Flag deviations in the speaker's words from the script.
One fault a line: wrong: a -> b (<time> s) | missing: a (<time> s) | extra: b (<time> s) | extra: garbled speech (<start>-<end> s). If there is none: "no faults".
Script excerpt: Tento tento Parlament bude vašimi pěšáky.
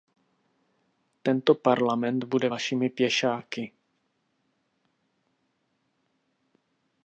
missing: tento (1.6 s)